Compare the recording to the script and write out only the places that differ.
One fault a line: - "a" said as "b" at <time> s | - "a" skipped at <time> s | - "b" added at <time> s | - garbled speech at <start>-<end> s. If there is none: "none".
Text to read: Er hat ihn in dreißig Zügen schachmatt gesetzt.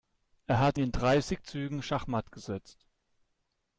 - "ihn" skipped at 0.8 s